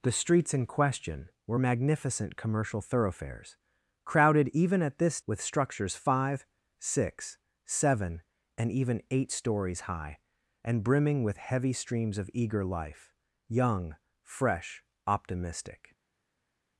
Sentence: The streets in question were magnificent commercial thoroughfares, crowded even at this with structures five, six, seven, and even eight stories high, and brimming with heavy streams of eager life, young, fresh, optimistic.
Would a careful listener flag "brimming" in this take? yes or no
no